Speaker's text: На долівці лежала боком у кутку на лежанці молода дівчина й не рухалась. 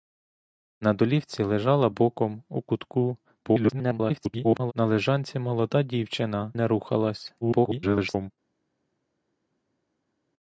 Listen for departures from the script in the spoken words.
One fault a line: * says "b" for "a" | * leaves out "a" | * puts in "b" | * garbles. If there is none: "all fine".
* garbles
* leaves out "й"
* garbles